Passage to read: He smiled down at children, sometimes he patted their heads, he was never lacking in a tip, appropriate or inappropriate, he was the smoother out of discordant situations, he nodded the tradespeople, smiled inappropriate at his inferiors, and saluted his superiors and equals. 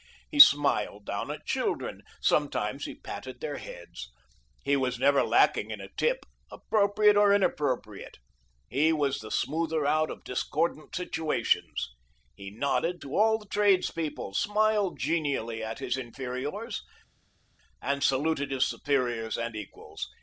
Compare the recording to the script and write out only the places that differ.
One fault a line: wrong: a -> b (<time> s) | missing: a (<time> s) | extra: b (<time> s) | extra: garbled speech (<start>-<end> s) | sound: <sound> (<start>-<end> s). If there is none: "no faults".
extra: to all (13.0 s)
wrong: inappropriate -> genially (15.0 s)